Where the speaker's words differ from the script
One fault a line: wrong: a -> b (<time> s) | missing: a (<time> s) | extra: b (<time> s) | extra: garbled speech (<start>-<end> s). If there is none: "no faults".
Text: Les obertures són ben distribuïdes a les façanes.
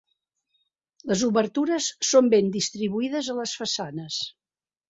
no faults